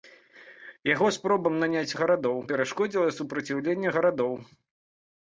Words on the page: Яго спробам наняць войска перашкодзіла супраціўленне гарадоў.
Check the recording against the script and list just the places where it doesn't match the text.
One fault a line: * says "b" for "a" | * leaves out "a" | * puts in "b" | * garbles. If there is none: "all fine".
* says "гарадоў" for "войска"